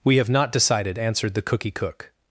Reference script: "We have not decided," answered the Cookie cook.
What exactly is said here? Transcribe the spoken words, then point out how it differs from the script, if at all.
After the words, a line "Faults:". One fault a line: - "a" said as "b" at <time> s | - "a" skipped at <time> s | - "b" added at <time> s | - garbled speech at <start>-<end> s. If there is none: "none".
"We have not decided," answered the Cookie cook.
Faults:
none